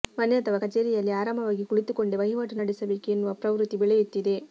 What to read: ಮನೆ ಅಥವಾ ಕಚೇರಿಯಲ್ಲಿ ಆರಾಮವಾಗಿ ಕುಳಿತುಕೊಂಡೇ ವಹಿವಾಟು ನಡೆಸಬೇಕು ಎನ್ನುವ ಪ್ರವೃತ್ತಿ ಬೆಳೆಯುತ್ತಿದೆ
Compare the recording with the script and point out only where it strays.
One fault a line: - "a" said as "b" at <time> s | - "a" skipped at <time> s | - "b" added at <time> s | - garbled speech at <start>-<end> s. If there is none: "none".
none